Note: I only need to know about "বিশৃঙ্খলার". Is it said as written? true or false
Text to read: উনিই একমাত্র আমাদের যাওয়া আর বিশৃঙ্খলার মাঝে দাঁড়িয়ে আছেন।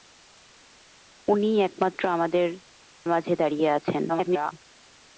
false